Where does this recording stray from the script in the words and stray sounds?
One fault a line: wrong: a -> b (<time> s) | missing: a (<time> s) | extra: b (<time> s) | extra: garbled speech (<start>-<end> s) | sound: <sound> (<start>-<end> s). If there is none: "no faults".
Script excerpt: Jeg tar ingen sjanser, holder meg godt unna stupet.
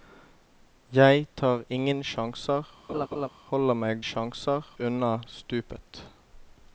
sound: laugh (2.9-3.3 s)
wrong: godt -> sjanser (4.0 s)